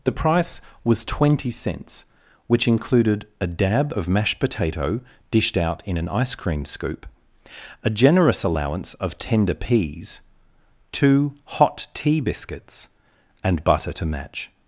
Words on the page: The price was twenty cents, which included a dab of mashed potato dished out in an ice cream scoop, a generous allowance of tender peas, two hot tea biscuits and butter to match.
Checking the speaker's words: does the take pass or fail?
pass